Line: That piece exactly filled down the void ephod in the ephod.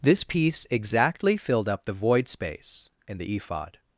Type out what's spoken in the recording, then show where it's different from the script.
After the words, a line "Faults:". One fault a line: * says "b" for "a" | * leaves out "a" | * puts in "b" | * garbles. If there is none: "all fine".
This piece exactly filled up the void space in the ephod.
Faults:
* says "This" for "That"
* says "up" for "down"
* says "space" for "ephod"